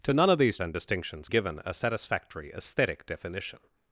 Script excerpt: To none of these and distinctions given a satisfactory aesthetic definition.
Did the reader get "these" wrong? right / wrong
right